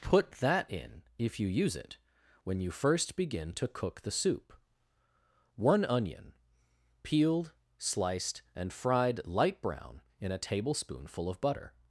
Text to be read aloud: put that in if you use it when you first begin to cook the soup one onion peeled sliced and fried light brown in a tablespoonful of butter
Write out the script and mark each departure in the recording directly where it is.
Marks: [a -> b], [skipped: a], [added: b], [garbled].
put that in if you use it when you first begin to cook the soup one onion peeled sliced and fried light brown in a tablespoonful of butter